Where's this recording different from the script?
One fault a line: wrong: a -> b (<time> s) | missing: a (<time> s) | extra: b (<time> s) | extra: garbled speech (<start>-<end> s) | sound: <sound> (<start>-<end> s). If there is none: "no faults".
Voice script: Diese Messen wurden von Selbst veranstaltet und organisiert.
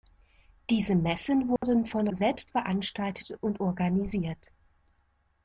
sound: dropout (1.6-1.6 s)